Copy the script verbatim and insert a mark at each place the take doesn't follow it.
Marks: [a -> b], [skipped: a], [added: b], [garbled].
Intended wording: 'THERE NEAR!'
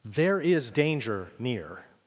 'THERE [added: IS DANGER] NEAR!'